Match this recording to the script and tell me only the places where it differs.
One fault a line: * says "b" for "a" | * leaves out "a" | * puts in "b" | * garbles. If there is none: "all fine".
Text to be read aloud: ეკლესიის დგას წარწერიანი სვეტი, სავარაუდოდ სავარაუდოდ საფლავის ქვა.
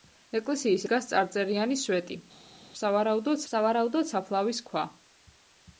all fine